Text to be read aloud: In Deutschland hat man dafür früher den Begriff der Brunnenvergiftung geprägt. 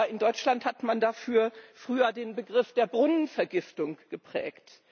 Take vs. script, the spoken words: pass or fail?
pass